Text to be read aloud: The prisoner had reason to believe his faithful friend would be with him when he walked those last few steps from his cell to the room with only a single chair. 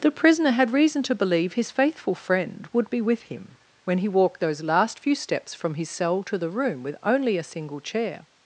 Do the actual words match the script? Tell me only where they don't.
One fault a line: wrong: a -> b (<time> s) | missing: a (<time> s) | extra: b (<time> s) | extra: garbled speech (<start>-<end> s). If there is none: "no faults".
no faults